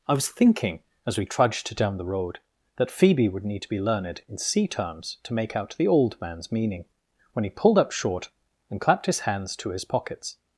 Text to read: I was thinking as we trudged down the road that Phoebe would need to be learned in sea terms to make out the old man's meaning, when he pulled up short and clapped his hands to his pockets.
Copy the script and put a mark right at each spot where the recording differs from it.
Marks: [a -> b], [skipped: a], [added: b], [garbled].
I was thinking as we trudged down the road that Phoebe would need to be learned in sea terms to make out the old man's meaning, when he pulled up short and clapped his hands to his pockets.